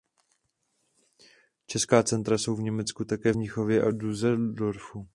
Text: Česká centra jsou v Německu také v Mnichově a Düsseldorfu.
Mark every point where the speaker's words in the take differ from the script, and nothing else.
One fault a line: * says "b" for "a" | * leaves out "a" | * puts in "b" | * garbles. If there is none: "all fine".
all fine